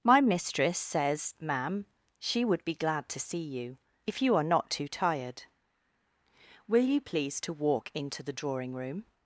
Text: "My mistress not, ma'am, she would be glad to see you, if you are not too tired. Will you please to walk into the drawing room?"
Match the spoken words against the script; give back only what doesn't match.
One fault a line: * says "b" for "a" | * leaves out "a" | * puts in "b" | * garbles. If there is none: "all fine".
* says "says" for "not"